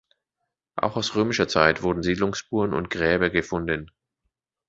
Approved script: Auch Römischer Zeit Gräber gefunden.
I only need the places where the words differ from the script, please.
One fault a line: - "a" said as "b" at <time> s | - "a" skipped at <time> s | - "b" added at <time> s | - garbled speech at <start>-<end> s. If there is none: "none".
- "aus" added at 0.9 s
- "wurden Siedlungsspuren und" added at 1.8 s